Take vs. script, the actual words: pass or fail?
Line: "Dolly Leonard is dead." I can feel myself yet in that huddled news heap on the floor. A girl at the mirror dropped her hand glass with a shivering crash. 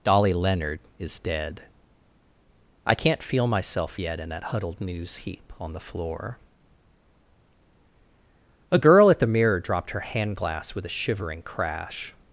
fail